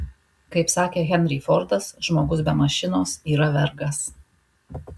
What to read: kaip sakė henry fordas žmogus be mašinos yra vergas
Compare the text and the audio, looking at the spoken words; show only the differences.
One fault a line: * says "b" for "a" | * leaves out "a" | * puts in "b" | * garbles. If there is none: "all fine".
all fine